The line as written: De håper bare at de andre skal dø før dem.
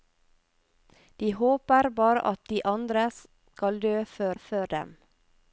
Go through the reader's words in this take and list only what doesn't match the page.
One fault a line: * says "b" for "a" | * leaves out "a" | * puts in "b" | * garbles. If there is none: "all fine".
* puts in "før"